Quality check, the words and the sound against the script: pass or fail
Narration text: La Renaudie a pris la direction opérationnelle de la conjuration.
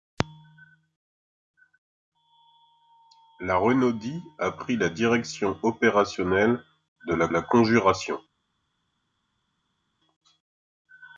fail